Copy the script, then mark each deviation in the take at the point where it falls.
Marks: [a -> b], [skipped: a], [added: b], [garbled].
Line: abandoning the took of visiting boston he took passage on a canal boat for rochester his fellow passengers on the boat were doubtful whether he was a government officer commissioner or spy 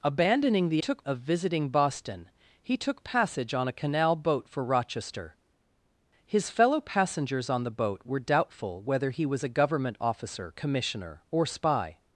abandoning the took of visiting boston he took passage on a canal boat for rochester his fellow passengers on the boat were doubtful whether he was a government officer commissioner or spy